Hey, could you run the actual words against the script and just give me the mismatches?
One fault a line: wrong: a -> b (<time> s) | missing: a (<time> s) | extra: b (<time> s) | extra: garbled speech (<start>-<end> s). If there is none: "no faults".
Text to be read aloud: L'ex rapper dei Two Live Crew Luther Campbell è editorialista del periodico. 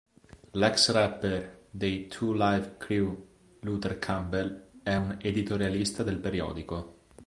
extra: un (4.9 s)